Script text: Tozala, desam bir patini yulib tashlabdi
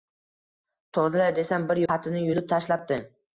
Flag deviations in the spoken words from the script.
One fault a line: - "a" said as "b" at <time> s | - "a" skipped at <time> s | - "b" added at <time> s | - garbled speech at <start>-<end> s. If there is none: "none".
none